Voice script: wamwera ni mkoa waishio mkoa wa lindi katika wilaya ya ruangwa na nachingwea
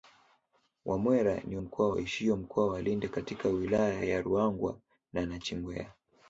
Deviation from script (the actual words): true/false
false